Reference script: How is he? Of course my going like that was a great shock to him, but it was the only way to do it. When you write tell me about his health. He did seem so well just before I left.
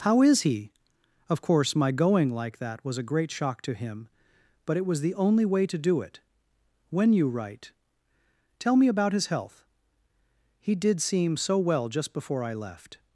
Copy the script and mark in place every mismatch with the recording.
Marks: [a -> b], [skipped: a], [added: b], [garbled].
How is he? Of course my going like that was a great shock to him, but it was the only way to do it. When you write tell me about his health. He did seem so well just before I left.